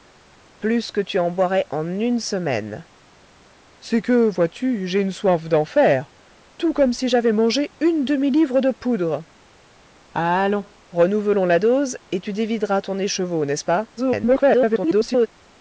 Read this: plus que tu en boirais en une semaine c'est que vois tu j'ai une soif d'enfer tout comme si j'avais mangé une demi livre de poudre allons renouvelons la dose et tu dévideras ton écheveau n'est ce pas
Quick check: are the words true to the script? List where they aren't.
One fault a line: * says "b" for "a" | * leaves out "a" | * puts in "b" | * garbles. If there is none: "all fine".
* garbles